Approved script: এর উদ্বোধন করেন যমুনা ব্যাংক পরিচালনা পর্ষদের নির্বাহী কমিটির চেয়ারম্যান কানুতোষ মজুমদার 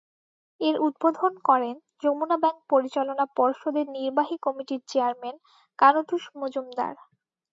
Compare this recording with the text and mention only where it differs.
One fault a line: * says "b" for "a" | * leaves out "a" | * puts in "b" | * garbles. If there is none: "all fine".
all fine